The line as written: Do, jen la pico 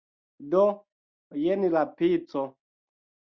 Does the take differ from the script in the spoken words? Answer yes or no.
no